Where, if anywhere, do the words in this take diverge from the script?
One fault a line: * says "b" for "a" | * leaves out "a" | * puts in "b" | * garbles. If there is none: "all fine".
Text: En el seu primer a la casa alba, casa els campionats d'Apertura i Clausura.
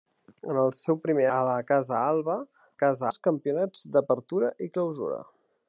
all fine